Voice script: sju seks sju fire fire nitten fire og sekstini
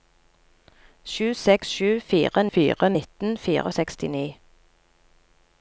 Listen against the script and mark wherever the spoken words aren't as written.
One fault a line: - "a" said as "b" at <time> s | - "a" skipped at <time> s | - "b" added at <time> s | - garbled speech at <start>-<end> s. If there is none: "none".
none